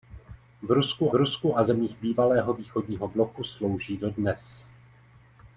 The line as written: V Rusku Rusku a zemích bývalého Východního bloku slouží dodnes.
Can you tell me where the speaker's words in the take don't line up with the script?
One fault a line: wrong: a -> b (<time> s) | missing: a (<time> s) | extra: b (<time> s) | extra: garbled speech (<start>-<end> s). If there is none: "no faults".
no faults